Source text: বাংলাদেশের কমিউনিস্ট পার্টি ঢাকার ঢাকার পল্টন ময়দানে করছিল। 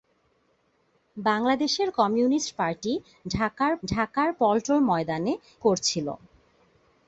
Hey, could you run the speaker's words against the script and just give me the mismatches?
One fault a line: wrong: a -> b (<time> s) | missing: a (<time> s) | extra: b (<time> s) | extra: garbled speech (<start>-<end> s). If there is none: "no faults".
no faults